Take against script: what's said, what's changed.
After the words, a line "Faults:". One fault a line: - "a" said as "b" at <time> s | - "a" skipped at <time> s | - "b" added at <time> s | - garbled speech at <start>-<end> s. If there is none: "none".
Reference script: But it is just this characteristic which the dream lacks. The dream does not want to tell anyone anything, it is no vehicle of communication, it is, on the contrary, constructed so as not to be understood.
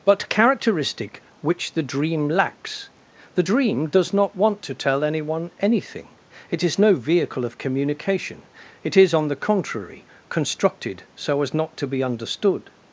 But characteristic which the dream lacks. The dream does not want to tell anyone anything, it is no vehicle of communication, it is, on the contrary, constructed so as not to be understood.
Faults:
- "it is just this" skipped at 0.3 s